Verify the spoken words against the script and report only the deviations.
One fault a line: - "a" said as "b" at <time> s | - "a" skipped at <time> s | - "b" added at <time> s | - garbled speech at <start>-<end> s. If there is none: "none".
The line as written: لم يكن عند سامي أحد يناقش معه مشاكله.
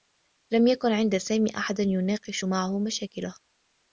none